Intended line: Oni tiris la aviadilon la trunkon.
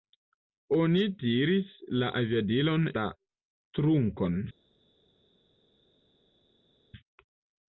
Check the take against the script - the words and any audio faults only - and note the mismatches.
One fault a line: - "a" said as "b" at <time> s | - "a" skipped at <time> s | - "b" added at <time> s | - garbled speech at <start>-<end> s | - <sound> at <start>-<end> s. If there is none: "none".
none